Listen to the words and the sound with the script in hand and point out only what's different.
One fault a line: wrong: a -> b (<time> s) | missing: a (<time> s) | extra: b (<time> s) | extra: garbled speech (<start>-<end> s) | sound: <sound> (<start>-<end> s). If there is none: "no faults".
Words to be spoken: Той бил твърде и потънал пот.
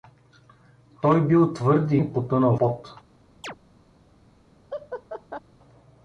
sound: chirp (3.4-3.6 s)
sound: laugh (4.7-5.4 s)